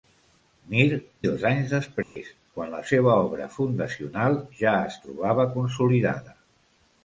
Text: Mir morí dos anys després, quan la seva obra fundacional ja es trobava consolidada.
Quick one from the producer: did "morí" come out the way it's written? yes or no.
no